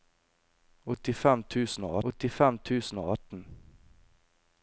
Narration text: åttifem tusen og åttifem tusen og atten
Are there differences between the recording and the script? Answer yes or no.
no